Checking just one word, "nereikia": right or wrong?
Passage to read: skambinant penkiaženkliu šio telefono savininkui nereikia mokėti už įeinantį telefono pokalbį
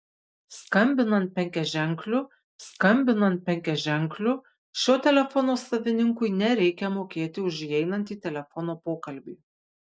right